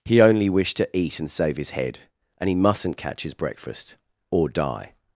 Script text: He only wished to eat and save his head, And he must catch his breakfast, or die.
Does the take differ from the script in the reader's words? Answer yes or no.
yes